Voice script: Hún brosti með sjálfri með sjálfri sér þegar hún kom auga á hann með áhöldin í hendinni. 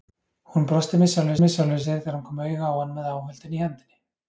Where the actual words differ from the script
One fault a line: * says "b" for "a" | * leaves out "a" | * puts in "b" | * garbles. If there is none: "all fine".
all fine